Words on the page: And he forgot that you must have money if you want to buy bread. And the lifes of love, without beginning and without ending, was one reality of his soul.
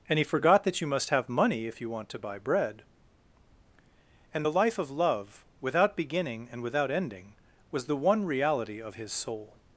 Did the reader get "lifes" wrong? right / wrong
wrong